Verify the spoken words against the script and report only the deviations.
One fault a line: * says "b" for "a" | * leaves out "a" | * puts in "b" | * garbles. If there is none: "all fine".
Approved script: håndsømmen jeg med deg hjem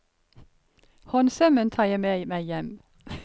* puts in "tar"
* says "meg" for "deg"